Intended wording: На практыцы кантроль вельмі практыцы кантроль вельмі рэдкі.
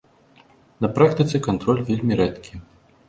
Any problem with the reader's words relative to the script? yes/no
yes